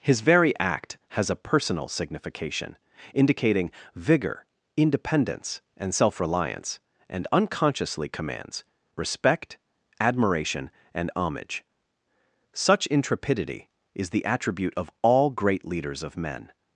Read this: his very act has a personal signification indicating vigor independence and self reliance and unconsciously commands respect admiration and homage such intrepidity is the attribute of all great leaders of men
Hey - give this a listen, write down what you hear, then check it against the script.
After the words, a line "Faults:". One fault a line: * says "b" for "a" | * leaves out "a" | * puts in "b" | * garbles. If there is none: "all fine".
his very act has a personal signification indicating vigor independence and self reliance and unconsciously commands respect admiration and homage such intrepidity is the attribute of all great leaders of men
Faults:
all fine